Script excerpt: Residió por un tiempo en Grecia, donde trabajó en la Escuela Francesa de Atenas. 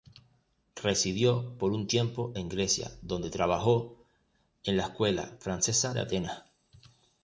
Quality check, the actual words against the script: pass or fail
pass